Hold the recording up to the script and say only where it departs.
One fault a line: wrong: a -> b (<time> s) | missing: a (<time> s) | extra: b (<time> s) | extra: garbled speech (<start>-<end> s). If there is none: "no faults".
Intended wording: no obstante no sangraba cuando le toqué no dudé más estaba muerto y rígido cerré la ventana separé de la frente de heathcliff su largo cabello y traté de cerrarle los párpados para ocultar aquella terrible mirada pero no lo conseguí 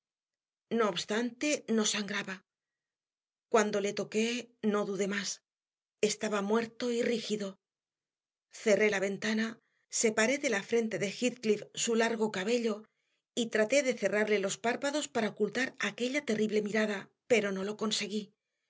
no faults